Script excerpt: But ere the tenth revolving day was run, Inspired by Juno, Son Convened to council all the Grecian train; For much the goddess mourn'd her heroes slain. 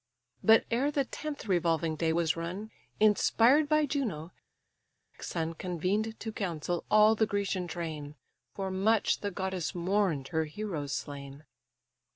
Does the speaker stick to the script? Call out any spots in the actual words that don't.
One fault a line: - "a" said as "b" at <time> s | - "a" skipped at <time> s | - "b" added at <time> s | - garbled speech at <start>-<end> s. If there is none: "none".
none